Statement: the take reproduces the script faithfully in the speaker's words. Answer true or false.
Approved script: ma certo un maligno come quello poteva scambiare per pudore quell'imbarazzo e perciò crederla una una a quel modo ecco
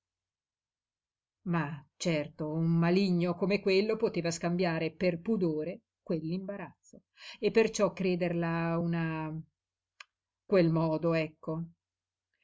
false